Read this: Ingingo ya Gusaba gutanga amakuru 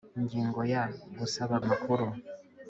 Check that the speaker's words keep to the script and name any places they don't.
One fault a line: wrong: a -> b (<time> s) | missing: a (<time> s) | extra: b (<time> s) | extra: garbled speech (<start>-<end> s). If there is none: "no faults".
missing: gutanga (1.6 s)